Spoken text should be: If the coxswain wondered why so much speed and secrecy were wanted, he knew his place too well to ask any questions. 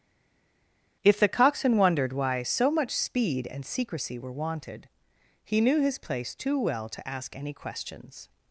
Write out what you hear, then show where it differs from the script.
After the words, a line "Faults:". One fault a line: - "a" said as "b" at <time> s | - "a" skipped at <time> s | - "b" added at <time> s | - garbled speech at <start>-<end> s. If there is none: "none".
If the coxswain wondered why so much speed and secrecy were wanted, he knew his place too well to ask any questions.
Faults:
none